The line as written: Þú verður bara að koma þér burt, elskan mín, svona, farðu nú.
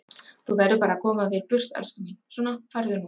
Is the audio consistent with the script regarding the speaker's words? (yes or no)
yes